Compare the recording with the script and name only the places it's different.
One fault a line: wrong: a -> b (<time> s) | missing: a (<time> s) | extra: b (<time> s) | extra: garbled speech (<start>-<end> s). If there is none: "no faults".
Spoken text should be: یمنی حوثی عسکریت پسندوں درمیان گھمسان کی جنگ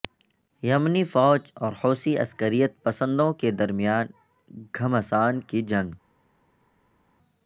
extra: فوج اور (1.0 s)
extra: کے (3.3 s)